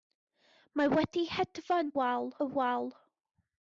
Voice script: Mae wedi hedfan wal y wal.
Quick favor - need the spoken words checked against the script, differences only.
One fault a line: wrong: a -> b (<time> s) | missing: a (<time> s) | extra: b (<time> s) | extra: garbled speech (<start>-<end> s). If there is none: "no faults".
no faults